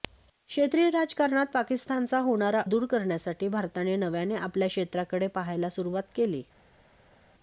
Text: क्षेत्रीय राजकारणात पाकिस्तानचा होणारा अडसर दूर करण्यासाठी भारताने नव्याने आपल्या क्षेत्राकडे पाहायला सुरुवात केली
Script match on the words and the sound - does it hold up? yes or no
no